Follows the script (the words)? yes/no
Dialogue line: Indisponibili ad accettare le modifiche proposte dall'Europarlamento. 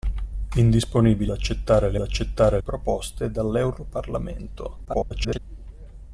no